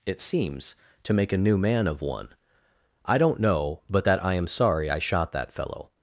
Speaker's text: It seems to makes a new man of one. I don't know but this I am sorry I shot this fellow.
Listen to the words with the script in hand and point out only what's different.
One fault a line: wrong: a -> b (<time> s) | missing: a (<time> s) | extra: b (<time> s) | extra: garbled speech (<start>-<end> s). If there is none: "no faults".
wrong: makes -> make (1.1 s)
wrong: this -> that (4.0 s)
wrong: this -> that (5.3 s)